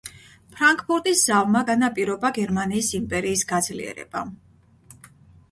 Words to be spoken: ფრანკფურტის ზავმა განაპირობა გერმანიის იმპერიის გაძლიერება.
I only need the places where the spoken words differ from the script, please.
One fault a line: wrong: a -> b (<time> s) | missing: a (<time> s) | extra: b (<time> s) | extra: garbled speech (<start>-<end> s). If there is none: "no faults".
no faults